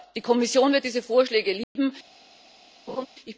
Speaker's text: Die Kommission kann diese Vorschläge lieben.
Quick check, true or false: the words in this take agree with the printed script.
false